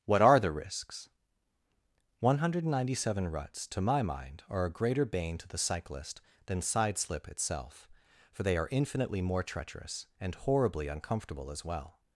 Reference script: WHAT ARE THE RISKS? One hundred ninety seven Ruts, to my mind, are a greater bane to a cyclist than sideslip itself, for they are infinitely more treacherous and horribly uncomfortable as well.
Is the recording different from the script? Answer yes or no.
yes